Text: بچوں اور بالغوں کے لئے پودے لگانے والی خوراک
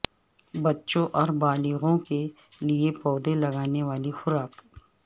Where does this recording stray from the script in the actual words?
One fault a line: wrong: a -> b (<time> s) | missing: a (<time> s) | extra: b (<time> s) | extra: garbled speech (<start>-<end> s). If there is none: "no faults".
no faults